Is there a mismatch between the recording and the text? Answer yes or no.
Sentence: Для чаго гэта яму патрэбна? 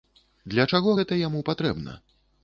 no